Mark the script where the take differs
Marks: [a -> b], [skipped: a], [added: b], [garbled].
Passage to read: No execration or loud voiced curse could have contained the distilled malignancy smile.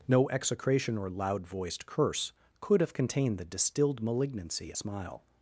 No execration or loud voiced curse could have contained the distilled malignancy smile.